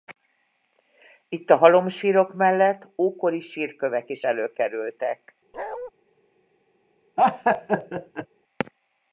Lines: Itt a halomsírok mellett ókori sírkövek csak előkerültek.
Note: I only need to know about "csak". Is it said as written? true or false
false